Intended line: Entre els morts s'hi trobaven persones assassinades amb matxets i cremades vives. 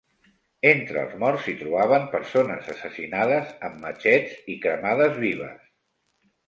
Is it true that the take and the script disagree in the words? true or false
false